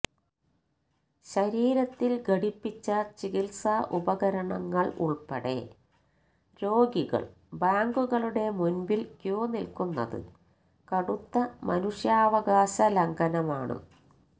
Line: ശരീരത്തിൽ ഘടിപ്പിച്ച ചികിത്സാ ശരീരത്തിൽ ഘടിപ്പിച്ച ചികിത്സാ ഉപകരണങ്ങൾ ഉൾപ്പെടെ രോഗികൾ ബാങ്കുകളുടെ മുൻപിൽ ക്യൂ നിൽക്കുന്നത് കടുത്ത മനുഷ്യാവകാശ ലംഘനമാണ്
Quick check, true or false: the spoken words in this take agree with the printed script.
false